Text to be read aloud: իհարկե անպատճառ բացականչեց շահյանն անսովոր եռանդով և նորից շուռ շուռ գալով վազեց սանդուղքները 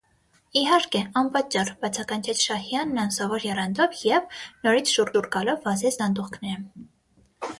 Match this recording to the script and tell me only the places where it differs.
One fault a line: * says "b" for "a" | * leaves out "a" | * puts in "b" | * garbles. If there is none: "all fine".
all fine